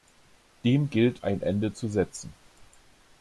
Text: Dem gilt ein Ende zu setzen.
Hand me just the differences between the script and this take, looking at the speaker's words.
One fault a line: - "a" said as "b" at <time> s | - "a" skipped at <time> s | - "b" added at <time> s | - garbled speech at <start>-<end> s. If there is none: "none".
none